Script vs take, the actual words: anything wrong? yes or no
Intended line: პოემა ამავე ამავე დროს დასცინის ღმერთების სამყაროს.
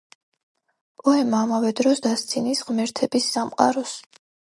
yes